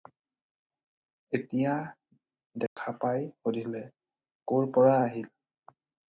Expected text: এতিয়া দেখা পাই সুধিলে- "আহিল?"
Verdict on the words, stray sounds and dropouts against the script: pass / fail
fail